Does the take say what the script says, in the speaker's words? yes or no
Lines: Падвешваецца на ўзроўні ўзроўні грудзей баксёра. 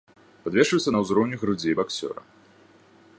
no